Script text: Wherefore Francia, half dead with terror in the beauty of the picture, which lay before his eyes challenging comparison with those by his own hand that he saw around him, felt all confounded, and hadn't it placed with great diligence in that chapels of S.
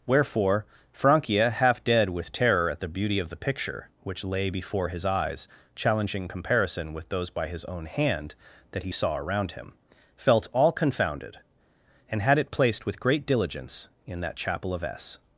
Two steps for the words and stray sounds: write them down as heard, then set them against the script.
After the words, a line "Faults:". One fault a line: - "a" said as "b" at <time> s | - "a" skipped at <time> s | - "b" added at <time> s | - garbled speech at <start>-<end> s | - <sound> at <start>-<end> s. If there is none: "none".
Wherefore Francia, half dead with terror at the beauty of the picture, which lay before his eyes challenging comparison with those by his own hand that he saw around him, felt all confounded, and had it placed with great diligence in that chapel of S.
Faults:
- "in" said as "at" at 2.7 s
- "hadn't" said as "had" at 12.2 s
- "chapels" said as "chapel" at 14.4 s